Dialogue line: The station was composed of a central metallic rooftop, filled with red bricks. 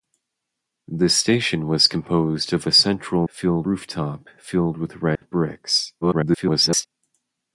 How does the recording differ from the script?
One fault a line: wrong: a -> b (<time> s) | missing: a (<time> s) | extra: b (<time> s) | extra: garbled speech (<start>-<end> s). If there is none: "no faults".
wrong: metallic -> filled (3.3 s)
extra: garbled speech (6.0-6.9 s)